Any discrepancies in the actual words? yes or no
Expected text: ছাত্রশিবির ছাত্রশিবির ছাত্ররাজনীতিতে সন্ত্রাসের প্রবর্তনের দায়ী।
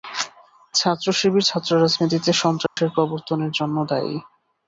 yes